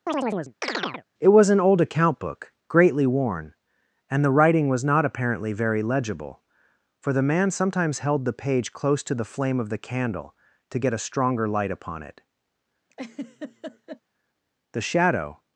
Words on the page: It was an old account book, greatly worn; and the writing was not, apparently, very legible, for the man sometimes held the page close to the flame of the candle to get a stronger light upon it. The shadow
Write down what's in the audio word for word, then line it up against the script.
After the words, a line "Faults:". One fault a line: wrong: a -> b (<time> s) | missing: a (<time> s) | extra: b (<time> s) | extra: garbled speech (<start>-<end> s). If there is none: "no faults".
It was an old account book, greatly worn; and the writing was not, apparently, very legible, for the man sometimes held the page close to the flame of the candle to get a stronger light upon it. The shadow
Faults:
no faults